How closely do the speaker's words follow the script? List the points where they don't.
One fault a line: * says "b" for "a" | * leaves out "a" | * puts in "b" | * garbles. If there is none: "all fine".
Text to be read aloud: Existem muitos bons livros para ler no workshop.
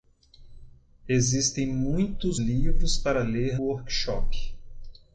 * leaves out "bons"
* leaves out "no"